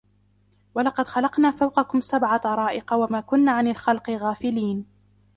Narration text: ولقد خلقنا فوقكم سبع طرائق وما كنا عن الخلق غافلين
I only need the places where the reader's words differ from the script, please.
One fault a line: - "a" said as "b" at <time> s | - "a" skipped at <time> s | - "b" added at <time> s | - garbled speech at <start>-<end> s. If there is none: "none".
none